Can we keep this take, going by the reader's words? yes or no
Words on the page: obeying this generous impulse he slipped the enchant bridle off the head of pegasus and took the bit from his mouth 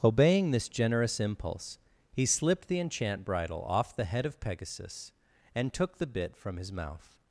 yes